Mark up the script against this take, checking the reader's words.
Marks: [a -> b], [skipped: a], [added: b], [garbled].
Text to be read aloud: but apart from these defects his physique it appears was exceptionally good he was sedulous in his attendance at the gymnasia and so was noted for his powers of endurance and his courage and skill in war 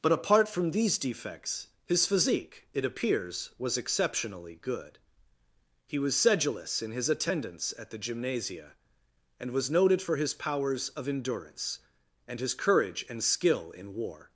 but apart from these defects his physique it appears was exceptionally good he was sedulous in his attendance at the gymnasia and [skipped: so] was noted for his powers of endurance and his courage and skill in war